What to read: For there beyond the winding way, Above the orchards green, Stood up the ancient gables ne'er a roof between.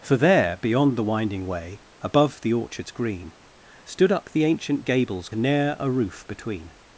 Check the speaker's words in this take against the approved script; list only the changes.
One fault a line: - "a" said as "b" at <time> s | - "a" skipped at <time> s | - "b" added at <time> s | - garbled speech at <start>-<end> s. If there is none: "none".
none